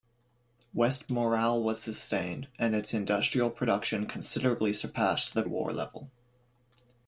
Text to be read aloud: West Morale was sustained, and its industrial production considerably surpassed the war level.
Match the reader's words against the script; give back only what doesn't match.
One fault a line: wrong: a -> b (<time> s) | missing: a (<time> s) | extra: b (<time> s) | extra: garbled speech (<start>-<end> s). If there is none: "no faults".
no faults